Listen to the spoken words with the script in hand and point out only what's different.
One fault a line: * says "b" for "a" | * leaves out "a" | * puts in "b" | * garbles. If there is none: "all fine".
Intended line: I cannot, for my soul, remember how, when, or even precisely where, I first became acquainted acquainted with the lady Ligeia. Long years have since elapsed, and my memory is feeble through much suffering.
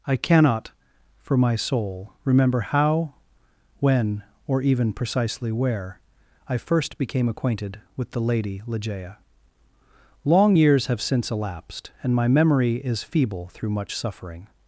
* leaves out "acquainted"